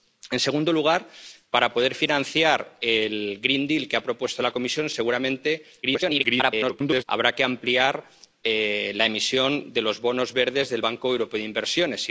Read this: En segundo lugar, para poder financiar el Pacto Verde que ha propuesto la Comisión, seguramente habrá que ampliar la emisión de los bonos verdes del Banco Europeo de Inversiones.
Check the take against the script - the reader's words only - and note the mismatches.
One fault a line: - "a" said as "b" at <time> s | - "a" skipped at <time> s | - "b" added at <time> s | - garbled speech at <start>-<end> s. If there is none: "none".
- garbled speech at 5.8-7.0 s